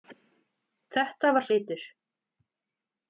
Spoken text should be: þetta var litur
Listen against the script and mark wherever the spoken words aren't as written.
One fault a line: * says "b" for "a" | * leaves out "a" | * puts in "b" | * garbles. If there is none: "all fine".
all fine